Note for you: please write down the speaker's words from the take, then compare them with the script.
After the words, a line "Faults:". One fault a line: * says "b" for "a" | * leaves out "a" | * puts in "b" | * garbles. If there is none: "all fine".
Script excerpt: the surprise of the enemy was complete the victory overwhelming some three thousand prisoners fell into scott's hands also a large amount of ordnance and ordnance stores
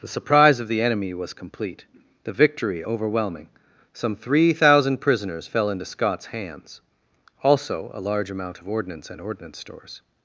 the surprise of the enemy was complete the victory overwhelming some three thousand prisoners fell into scott's hands also a large amount of ordnance and ordnance stores
Faults:
all fine